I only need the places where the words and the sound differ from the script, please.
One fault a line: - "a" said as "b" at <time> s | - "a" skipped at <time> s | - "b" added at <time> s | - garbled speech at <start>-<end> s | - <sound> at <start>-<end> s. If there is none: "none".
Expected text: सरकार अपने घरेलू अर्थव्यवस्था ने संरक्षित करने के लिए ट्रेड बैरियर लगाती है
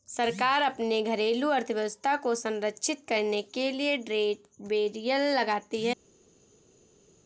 - "ने" said as "को" at 2.2 s